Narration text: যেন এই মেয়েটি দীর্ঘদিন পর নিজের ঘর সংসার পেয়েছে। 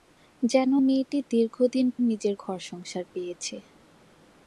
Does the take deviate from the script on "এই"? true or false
true